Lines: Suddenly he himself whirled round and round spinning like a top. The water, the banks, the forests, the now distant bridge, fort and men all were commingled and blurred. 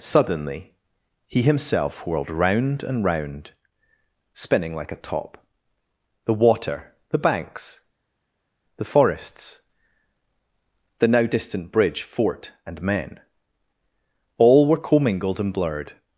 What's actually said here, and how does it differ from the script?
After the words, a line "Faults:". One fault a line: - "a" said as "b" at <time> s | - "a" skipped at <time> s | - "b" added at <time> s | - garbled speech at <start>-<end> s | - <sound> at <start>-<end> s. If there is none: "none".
Suddenly he himself whirled round and round spinning like a top. The water, the banks, the forests, the now distant bridge, fort and men all were commingled and blurred.
Faults:
none